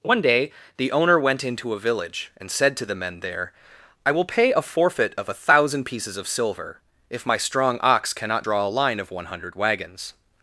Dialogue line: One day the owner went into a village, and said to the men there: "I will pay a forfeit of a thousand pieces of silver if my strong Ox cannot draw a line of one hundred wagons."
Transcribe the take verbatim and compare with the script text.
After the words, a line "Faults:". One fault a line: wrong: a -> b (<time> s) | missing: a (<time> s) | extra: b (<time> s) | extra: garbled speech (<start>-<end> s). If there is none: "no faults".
One day the owner went into a village, and said to the men there: "I will pay a forfeit of a thousand pieces of silver if my strong Ox cannot draw a line of one hundred wagons."
Faults:
no faults